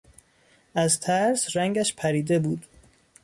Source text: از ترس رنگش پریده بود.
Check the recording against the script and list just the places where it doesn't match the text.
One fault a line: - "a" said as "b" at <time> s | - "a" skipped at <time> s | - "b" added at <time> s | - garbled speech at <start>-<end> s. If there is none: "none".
none